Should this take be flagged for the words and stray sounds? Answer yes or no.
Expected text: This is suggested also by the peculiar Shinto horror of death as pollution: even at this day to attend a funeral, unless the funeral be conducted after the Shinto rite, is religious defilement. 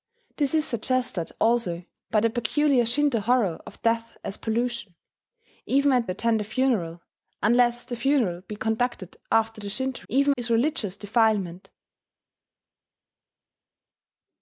yes